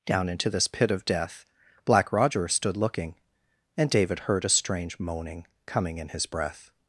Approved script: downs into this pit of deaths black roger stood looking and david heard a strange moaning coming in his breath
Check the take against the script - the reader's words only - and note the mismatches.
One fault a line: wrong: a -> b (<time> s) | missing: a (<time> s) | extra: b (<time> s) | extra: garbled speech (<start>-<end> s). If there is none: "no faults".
wrong: downs -> down (0.1 s)
wrong: deaths -> death (1.1 s)